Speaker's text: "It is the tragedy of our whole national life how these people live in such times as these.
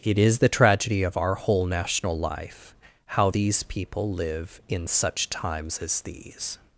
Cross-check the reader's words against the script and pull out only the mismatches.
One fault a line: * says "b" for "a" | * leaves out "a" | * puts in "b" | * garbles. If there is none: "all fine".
all fine